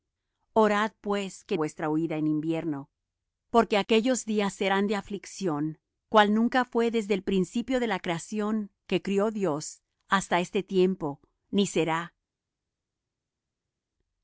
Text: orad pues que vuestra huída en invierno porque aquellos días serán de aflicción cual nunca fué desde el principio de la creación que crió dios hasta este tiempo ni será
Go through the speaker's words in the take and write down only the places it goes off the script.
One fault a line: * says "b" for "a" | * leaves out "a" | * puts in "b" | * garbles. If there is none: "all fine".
all fine